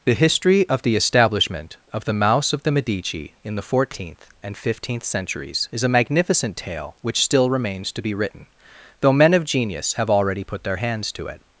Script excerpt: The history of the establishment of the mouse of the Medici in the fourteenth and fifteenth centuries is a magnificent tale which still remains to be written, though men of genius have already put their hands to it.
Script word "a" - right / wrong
right